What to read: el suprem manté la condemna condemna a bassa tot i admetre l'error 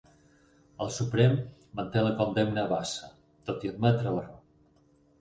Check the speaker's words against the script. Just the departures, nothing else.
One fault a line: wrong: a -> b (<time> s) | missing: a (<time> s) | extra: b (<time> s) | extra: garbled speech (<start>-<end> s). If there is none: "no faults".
missing: condemna (2.6 s)